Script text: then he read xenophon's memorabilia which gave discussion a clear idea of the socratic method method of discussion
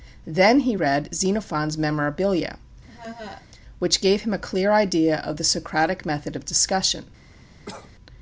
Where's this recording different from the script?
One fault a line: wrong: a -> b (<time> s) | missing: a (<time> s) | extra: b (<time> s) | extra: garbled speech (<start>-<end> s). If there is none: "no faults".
wrong: discussion -> him (4.2 s)
missing: method (6.3 s)